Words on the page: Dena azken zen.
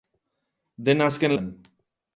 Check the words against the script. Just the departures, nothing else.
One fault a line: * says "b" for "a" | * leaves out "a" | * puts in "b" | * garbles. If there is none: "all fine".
all fine